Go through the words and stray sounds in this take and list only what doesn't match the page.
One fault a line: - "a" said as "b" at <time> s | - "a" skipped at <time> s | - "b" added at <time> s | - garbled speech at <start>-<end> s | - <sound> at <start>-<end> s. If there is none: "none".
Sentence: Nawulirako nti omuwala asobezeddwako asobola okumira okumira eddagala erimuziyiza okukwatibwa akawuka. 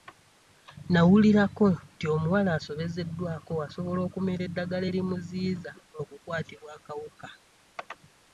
- "okumira" skipped at 4.4 s